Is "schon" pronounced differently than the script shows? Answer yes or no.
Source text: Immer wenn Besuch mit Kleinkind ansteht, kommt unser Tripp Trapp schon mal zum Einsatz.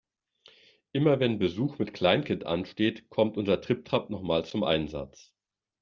yes